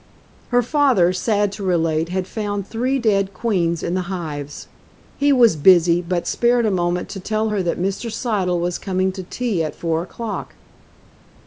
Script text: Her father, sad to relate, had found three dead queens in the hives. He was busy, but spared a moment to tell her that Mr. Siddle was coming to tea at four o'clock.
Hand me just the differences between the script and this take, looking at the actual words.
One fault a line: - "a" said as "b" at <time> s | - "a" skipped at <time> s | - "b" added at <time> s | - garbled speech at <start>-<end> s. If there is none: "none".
none